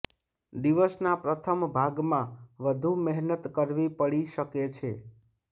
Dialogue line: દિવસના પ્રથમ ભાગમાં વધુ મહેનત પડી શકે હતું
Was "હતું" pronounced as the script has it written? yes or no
no